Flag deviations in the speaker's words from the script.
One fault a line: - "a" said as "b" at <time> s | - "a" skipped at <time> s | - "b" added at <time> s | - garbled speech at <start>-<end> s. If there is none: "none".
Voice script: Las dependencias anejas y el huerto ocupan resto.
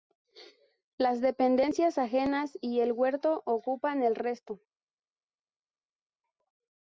- "el" added at 4.0 s